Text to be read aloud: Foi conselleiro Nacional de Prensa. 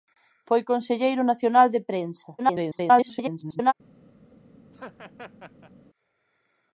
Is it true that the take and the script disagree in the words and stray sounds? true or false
true